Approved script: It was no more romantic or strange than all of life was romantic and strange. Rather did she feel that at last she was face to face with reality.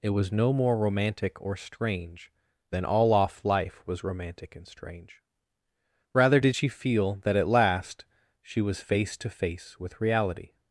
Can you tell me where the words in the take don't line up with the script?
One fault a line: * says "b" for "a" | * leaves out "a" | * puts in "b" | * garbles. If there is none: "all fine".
* says "off" for "of"